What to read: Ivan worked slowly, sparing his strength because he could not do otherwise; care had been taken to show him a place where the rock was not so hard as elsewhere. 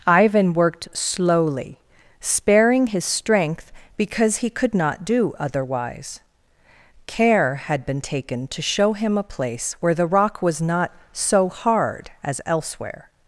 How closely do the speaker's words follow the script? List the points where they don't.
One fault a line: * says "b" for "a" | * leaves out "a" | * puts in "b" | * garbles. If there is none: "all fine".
all fine